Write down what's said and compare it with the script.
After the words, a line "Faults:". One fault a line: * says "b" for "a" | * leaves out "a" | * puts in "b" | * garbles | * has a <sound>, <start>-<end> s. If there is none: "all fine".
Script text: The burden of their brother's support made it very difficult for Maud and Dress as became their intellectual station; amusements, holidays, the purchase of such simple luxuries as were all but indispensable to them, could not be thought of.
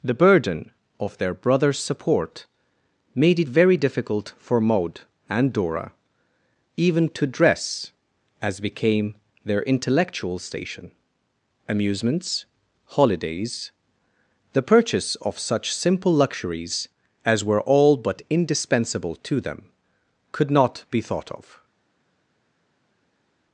The burden of their brother's support made it very difficult for Maud and Dora even to dress as became their intellectual station; amusements, holidays, the purchase of such simple luxuries as were all but indispensable to them, could not be thought of.
Faults:
* puts in "Dora even to"